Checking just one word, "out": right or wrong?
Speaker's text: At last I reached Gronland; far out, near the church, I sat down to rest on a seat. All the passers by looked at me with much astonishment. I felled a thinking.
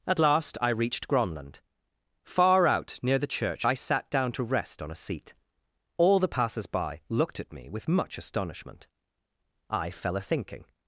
right